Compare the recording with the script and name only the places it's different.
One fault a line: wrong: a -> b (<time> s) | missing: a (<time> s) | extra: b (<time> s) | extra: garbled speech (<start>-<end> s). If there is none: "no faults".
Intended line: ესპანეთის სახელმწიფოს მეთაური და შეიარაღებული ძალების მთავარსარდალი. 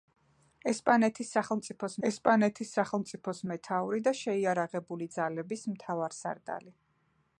extra: ესპანეთის სახელმწიფოს (2.1 s)